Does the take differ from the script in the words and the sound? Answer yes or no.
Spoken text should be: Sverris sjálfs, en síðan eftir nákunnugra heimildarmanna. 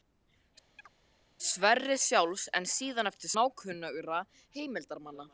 yes